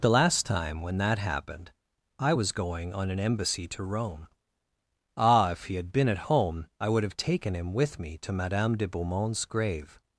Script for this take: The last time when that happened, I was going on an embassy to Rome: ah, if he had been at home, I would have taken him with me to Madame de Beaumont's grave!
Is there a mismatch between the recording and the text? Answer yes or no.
no